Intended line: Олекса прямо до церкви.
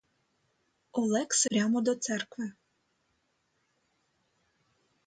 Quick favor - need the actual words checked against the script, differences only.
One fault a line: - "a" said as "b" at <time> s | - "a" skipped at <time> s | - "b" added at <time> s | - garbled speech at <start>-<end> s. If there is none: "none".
none